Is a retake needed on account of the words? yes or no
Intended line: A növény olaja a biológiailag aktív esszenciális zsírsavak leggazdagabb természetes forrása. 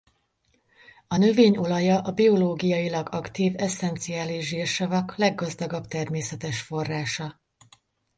no